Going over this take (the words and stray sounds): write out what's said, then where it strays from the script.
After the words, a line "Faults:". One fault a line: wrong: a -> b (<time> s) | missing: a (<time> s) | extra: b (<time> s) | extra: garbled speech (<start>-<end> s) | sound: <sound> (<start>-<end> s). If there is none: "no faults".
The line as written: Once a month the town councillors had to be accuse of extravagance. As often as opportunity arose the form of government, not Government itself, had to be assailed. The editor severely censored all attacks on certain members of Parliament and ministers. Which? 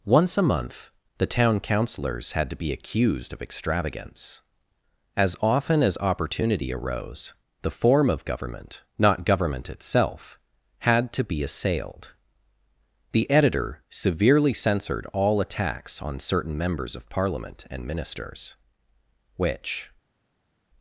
Once a month the town councillors had to be accused of extravagance. As often as opportunity arose the form of government, not Government itself, had to be assailed. The editor severely censored all attacks on certain members of Parliament and ministers. Which?
Faults:
wrong: accuse -> accused (2.7 s)